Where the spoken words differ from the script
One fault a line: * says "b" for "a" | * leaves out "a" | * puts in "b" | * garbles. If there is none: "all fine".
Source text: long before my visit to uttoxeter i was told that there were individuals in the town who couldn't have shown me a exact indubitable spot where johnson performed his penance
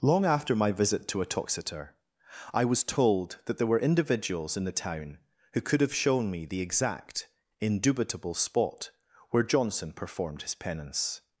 * says "after" for "before"
* says "could" for "couldn't"
* says "the" for "a"